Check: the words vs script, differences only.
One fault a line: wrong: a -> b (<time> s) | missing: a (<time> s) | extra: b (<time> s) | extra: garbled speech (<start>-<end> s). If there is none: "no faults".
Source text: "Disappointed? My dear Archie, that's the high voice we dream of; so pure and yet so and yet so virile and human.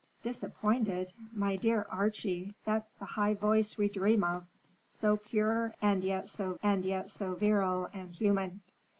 no faults